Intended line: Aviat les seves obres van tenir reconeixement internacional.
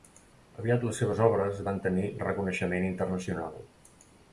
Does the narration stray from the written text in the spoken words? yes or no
no